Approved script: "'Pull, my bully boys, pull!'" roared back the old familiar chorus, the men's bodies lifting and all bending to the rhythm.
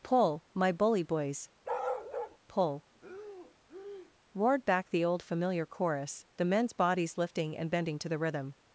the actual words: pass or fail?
fail